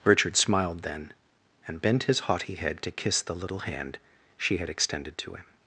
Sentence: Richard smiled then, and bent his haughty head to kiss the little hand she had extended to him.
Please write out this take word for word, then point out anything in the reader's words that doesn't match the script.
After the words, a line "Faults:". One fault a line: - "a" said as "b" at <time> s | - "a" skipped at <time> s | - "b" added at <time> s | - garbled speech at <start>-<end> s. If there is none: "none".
Richard smiled then, and bent his haughty head to kiss the little hand she had extended to him.
Faults:
none